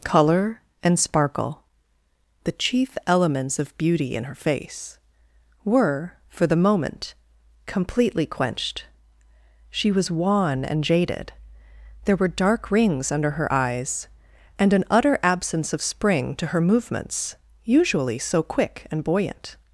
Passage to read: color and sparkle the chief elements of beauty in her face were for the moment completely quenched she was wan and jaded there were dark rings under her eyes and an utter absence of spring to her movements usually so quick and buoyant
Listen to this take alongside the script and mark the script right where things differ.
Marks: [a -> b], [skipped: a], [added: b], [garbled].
color and sparkle the chief elements of beauty in her face were for the moment completely quenched she was wan and jaded there were dark rings under her eyes and an utter absence of spring to her movements usually so quick and buoyant